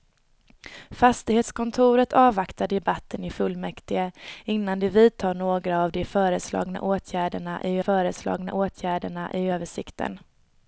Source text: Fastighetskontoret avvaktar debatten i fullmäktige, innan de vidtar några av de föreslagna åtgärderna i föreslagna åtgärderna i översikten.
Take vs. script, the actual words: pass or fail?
pass